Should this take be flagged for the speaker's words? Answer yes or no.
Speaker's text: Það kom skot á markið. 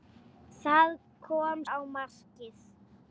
yes